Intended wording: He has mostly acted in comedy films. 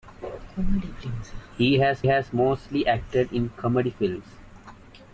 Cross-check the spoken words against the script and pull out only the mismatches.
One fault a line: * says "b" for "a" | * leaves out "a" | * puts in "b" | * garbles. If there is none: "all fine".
* puts in "has"